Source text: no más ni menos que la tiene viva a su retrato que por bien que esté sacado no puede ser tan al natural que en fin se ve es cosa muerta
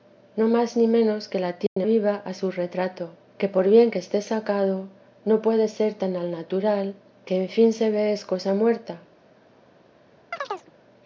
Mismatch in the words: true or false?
false